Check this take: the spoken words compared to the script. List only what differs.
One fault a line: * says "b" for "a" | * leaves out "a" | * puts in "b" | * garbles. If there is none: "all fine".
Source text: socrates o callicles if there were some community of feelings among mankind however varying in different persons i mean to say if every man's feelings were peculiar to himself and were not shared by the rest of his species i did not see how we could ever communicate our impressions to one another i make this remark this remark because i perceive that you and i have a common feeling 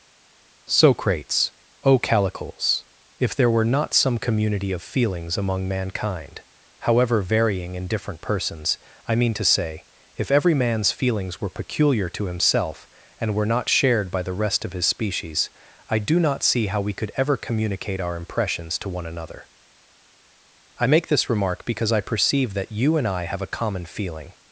* puts in "not"
* says "do" for "did"
* leaves out "this remark"